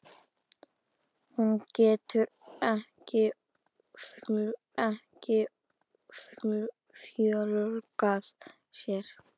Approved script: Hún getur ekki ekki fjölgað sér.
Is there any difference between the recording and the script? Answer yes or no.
no